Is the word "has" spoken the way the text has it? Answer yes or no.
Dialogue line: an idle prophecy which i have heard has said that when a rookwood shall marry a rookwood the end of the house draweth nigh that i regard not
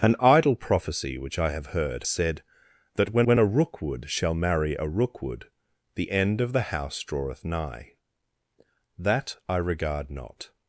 no